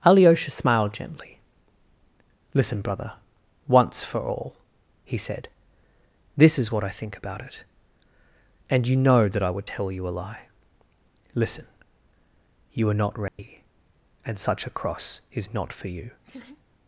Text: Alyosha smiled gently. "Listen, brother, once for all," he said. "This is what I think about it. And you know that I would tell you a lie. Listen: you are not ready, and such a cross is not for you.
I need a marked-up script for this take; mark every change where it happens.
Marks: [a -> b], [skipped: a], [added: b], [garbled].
Alyosha smiled gently. "Listen, brother, once for all," he said. "This is what I think about it. And you know that I would tell you a lie. Listen: you are not ready, and such a cross is not for you.